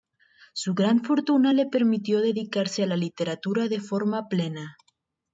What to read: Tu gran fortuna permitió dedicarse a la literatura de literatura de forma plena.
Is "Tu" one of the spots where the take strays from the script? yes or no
yes